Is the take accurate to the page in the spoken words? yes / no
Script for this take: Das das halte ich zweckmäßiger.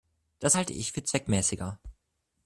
no